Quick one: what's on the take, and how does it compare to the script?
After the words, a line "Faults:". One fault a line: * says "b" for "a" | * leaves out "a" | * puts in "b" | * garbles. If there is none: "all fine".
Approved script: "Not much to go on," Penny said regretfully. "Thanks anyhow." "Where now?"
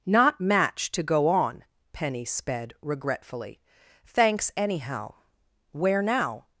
"Not match to go on," Penny sped regretfully. "Thanks anyhow." "Where now?"
Faults:
* says "match" for "much"
* says "sped" for "said"